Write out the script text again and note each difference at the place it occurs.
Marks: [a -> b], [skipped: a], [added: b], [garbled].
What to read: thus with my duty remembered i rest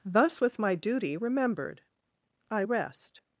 thus with my duty remembered i rest